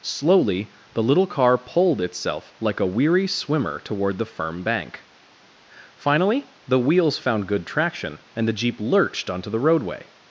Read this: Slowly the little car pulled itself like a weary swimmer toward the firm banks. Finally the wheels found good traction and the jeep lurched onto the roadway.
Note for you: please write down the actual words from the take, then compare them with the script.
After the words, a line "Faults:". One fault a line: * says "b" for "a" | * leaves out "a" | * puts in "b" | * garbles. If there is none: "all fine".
Slowly the little car pulled itself like a weary swimmer toward the firm bank. Finally the wheels found good traction and the jeep lurched onto the roadway.
Faults:
* says "bank" for "banks"